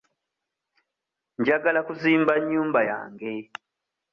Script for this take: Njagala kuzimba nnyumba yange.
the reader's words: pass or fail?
pass